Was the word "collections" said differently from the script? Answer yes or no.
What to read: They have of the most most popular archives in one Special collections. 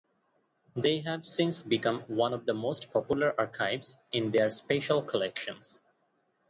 no